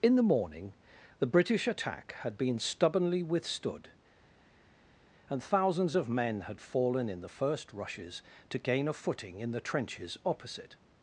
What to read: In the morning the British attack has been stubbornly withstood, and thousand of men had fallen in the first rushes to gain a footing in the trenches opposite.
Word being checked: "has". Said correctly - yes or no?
no